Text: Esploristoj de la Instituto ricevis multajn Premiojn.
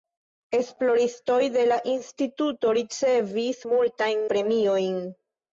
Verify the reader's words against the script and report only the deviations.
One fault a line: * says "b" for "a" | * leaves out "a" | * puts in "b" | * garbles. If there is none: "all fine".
all fine